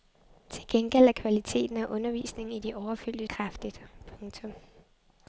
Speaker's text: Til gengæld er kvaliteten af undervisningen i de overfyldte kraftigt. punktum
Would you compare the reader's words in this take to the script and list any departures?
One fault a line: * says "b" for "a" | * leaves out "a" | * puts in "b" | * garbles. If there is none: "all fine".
all fine